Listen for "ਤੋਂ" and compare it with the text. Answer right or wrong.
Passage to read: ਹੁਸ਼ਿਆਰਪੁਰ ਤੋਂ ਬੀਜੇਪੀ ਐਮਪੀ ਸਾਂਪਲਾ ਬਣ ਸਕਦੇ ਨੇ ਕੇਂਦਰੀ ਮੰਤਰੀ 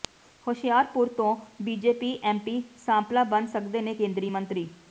right